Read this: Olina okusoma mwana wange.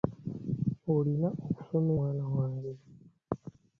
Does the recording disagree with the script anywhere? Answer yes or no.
no